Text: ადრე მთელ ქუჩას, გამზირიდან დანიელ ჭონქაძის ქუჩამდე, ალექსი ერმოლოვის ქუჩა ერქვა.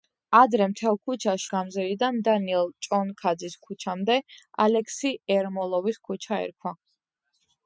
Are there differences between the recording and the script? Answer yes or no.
no